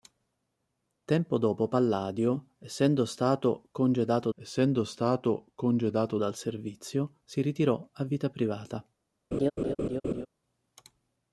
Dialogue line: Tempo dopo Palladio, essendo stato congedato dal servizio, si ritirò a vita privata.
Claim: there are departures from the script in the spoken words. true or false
true